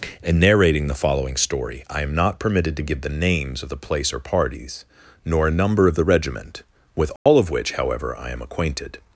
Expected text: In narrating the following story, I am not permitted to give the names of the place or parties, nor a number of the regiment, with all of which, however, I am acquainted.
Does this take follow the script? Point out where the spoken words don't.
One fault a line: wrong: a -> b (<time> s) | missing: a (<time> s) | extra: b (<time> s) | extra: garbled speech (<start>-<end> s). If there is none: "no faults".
no faults